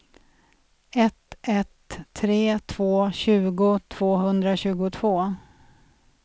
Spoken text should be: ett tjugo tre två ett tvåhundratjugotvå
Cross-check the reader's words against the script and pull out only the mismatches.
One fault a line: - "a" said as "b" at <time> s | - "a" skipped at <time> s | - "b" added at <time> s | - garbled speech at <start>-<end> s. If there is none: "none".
- "tjugo" said as "ett" at 1.4 s
- "ett" said as "tjugo" at 3.1 s